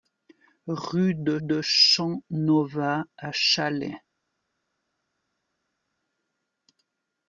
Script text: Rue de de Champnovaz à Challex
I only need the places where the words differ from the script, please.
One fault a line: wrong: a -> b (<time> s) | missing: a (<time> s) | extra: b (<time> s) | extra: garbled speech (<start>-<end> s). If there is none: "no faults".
no faults